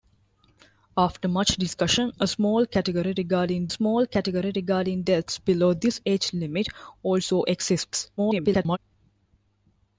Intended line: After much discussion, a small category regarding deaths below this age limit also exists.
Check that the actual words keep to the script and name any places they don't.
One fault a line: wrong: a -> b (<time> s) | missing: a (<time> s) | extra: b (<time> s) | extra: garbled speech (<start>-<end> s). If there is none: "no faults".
extra: small category regarding (3.7 s)
extra: garbled speech (8.2-8.8 s)